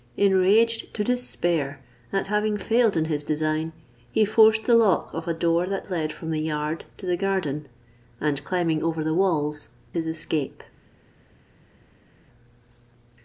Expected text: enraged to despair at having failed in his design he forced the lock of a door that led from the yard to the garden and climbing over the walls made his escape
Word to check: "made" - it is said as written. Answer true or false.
false